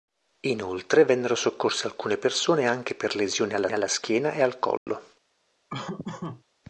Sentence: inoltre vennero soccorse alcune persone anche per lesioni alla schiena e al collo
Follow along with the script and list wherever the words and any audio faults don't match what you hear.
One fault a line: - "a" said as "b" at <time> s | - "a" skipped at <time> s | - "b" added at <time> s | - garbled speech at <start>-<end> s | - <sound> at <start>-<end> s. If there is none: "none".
- "alla" added at 3.7 s
- dropout at 4.8-4.9 s
- laugh at 5.7-6.4 s